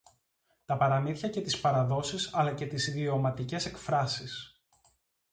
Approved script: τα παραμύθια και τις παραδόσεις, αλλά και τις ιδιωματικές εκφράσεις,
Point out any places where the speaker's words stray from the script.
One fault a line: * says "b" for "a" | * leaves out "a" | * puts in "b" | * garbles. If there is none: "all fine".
all fine